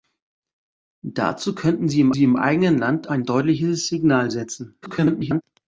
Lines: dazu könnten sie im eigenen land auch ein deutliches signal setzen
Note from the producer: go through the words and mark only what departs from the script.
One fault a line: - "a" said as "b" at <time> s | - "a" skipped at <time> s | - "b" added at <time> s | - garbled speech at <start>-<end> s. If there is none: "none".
- "sie im" added at 2.1 s
- "auch" skipped at 3.1 s
- garbled speech at 4.8-5.4 s